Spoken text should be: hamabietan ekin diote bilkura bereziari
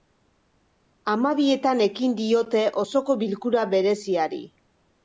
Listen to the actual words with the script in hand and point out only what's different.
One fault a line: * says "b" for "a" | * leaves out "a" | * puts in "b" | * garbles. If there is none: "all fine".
* puts in "osoko"